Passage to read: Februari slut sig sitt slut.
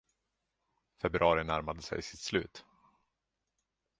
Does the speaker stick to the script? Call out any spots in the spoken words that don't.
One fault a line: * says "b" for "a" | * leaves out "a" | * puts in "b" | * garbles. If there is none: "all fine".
* says "närmade" for "slut"